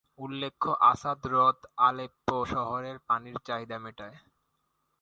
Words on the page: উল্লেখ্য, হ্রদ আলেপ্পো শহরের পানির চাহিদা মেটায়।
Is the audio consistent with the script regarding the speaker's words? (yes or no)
no